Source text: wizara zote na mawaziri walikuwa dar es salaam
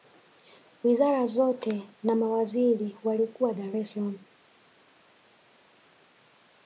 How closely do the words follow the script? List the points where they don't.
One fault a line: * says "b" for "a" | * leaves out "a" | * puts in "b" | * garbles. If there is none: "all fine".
all fine